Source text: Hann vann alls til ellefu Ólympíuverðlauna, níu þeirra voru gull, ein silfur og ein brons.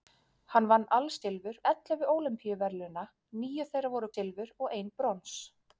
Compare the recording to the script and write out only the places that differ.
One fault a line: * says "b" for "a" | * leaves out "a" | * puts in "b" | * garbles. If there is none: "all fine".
* says "silfur" for "til"
* leaves out "gull ein"